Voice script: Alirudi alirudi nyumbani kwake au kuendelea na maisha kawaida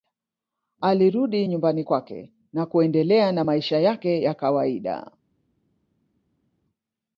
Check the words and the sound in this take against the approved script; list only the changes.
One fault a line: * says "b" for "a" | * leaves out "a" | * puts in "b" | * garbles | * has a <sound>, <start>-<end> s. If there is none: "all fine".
* leaves out "alirudi"
* says "na" for "au"
* puts in "yake ya"